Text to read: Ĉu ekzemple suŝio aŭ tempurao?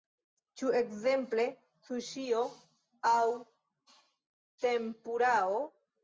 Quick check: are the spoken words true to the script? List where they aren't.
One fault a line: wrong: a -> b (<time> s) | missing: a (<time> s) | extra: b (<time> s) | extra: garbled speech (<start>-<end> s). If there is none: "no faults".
no faults